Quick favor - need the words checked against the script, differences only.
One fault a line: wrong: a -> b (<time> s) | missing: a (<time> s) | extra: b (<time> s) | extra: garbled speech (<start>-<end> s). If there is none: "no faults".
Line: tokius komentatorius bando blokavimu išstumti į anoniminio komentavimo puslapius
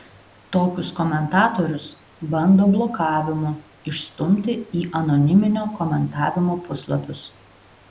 no faults